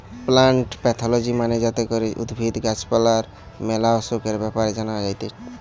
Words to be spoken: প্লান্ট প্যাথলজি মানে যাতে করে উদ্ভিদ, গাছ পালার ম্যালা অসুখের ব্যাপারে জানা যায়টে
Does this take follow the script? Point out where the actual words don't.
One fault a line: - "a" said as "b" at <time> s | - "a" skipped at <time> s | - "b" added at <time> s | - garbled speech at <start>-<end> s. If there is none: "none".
none